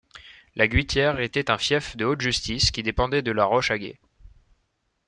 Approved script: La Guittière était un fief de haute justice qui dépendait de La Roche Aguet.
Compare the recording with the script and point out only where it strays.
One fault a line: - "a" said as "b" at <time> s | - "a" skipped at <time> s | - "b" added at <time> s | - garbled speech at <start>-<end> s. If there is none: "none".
none